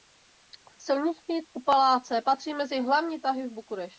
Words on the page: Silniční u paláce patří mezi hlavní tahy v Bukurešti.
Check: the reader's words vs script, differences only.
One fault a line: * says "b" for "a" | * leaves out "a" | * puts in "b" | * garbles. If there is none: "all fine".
all fine